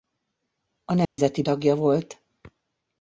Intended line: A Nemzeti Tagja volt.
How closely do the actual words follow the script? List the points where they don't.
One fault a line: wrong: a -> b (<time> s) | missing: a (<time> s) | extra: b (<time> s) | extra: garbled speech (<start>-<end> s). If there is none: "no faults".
no faults